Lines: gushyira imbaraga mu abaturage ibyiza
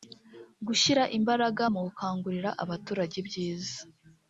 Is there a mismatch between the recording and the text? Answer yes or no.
yes